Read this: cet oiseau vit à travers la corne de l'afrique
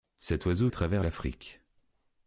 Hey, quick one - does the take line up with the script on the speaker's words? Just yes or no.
no